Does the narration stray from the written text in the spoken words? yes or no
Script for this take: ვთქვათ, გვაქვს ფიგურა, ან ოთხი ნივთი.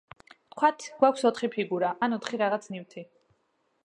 yes